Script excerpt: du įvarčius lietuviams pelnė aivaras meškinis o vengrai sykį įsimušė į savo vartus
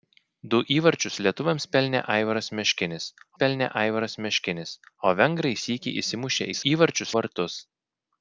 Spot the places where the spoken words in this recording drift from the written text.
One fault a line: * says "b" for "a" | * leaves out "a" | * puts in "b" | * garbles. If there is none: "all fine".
* puts in "pelnė aivaras meškinis"
* says "įvarčius" for "savo"